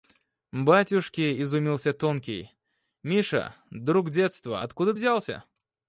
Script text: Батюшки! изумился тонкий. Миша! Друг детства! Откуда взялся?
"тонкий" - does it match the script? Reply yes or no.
yes